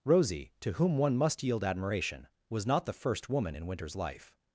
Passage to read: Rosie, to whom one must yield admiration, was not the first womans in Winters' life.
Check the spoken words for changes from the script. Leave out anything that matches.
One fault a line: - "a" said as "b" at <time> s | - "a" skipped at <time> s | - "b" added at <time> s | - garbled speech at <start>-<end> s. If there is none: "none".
- "womans" said as "woman" at 3.3 s